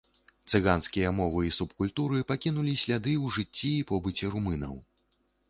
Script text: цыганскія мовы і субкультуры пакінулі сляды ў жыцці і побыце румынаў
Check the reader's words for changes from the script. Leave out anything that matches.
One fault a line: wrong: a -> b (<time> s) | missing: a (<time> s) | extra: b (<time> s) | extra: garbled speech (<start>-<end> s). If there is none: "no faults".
no faults